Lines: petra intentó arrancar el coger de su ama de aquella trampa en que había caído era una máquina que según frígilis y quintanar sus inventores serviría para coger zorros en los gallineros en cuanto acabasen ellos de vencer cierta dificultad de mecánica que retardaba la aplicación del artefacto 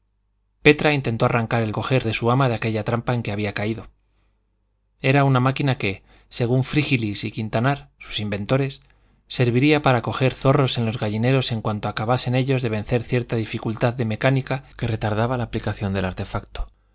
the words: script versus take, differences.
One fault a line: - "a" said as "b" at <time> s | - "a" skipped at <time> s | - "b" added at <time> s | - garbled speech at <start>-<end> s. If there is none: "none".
none